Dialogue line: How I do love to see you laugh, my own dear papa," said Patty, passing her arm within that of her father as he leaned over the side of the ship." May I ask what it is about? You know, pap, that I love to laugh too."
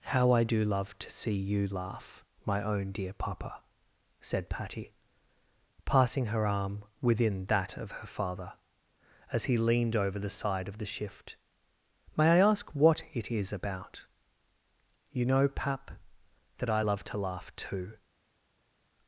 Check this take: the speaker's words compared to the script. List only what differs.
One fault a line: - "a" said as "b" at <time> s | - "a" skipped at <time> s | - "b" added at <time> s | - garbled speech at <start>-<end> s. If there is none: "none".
- "ship" said as "shift" at 10.8 s